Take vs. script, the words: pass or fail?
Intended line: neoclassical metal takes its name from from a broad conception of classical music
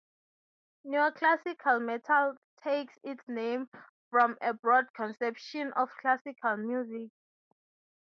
fail